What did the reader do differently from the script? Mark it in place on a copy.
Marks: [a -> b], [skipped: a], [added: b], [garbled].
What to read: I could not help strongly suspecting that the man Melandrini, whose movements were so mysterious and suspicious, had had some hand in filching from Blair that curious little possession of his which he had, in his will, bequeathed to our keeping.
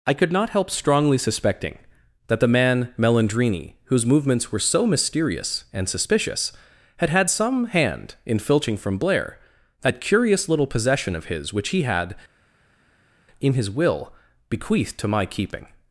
I could not help strongly suspecting that the man Melandrini, whose movements were so mysterious and suspicious, had had some hand in filching from Blair that curious little possession of his which he had, in his will, bequeathed to [our -> my] keeping.